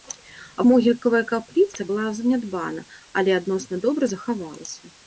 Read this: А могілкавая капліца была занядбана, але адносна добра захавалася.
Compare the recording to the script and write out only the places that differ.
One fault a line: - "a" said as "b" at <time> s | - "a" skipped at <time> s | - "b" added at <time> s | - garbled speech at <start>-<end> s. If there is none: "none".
none